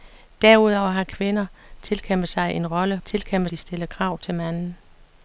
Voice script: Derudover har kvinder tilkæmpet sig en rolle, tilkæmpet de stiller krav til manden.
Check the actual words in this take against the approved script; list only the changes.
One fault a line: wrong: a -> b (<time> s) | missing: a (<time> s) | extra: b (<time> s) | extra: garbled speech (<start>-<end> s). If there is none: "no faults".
no faults